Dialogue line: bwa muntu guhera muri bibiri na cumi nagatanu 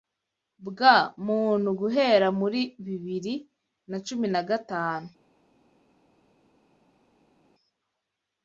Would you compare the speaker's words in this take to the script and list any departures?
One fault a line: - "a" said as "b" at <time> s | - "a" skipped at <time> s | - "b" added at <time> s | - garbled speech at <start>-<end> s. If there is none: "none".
none